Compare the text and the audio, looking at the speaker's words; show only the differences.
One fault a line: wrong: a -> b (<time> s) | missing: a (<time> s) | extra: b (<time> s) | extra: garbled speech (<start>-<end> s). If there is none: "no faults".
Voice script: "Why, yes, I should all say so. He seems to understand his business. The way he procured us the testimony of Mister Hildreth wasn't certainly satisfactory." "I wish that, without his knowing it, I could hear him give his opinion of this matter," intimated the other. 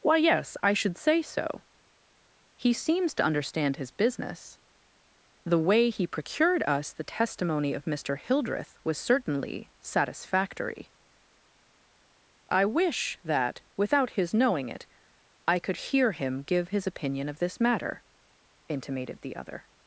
missing: all (1.0 s)
wrong: wasn't -> was (8.8 s)